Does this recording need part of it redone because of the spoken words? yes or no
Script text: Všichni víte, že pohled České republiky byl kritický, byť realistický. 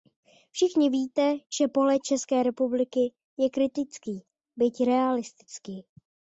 yes